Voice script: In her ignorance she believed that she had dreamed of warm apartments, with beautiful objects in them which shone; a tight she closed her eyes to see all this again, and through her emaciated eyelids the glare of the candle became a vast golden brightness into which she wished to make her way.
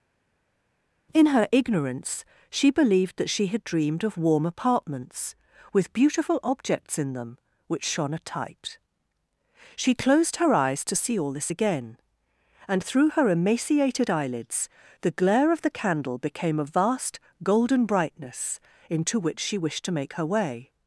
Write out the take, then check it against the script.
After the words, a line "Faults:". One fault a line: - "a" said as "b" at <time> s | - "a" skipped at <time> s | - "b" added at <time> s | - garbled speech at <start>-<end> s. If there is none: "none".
In her ignorance she believed that she had dreamed of warm apartments, with beautiful objects in them which shone; a tight she closed her eyes to see all this again, and through her emaciated eyelids the glare of the candle became a vast golden brightness into which she wished to make her way.
Faults:
none